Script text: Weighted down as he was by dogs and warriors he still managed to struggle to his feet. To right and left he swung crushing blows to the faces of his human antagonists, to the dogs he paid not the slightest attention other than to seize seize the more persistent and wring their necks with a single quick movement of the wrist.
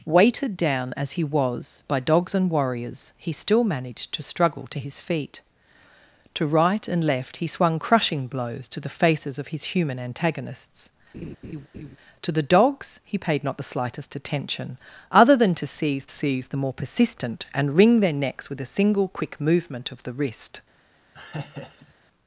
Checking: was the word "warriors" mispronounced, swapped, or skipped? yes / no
no